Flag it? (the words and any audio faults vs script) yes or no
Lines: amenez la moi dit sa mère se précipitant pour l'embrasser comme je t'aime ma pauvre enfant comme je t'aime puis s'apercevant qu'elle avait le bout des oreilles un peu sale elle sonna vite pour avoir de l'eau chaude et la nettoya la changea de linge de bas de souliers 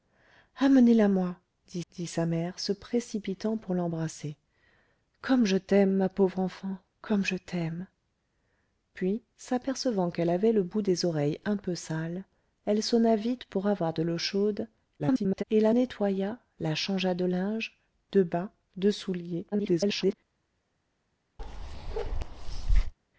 yes